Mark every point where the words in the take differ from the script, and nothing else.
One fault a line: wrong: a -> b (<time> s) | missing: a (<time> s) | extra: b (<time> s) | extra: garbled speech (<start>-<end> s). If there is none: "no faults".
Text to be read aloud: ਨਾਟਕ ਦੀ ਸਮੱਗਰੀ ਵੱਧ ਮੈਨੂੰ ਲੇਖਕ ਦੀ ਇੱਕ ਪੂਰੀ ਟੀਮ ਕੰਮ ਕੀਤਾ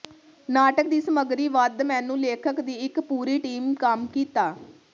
no faults